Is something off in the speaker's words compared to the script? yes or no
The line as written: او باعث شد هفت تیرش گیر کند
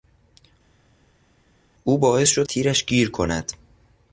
yes